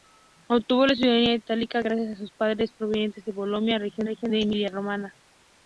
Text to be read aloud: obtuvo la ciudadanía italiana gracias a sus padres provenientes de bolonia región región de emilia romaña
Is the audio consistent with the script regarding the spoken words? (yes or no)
yes